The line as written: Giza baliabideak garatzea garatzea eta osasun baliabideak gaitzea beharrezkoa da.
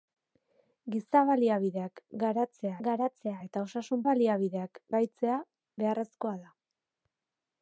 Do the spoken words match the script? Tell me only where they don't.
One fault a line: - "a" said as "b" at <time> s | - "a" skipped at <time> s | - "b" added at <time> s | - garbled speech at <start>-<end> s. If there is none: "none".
none